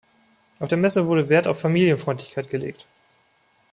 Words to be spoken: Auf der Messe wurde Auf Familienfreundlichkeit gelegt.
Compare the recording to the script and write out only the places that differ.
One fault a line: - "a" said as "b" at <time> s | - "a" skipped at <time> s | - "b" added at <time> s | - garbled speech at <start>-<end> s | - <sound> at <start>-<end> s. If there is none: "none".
- "Wert" added at 1.3 s